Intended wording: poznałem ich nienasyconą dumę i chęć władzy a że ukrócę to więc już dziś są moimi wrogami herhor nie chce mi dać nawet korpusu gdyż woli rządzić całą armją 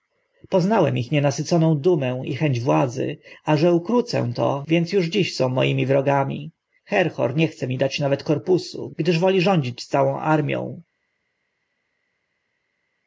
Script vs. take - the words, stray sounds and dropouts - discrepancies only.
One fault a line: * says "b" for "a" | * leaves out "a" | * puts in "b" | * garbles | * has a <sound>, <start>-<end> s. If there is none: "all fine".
all fine